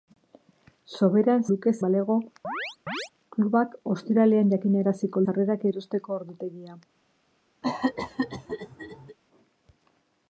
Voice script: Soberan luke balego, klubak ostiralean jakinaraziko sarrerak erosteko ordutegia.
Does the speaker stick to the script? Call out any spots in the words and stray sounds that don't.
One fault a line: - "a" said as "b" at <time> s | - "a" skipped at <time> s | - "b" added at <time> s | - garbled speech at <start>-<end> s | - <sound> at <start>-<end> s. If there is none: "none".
- chirp at 2.4-3.1 s
- cough at 7.6-9.2 s